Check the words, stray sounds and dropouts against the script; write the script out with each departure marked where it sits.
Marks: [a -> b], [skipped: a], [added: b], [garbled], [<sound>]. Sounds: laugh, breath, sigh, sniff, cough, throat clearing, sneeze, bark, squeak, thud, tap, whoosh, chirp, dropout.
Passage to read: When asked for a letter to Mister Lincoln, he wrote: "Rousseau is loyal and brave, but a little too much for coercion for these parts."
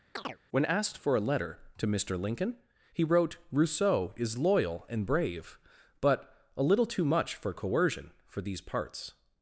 [chirp] When asked for a letter to Mister Lincoln, he wrote: "Rousseau is loyal and brave, but a little too much for coercion for these parts."